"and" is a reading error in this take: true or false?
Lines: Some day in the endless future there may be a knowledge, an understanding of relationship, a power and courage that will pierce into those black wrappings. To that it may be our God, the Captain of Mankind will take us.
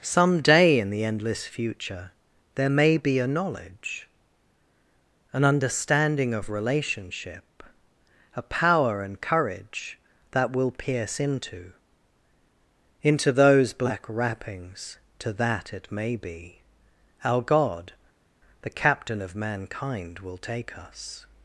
false